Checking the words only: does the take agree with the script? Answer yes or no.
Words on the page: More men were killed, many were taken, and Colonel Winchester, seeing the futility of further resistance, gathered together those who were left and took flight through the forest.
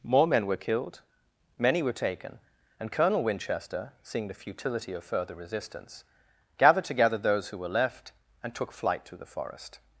yes